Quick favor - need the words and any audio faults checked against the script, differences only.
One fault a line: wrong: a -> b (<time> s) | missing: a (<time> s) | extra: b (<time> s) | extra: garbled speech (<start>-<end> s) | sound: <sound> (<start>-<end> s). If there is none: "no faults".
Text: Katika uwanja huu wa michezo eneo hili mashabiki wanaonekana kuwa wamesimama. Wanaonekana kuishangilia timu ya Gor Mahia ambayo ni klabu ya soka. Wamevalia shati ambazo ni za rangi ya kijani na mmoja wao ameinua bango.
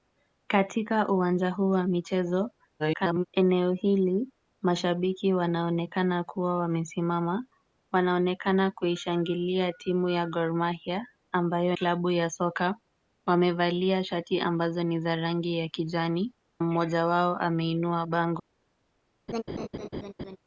extra: garbled speech (2.8-3.3 s)
missing: ni (11.7 s)
missing: na (16.3 s)
sound: laugh (19.3-20.4 s)